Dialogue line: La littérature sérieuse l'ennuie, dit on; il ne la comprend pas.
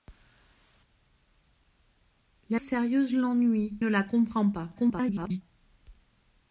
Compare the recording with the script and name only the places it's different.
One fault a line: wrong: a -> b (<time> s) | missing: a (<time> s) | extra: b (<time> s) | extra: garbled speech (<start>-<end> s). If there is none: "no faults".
missing: littérature (2.6 s)
missing: dit on il (3.8 s)
extra: garbled speech (4.8-5.4 s)